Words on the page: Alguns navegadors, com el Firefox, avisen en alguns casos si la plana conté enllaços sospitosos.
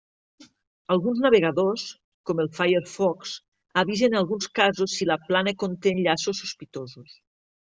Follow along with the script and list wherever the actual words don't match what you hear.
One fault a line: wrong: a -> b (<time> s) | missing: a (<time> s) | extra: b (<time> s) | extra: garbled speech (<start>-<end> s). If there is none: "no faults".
no faults